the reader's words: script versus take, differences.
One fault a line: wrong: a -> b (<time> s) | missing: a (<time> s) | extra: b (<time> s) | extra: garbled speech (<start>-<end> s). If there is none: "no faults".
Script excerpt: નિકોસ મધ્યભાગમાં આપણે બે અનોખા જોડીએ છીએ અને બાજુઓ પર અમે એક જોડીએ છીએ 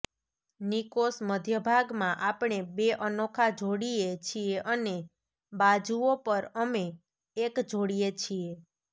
no faults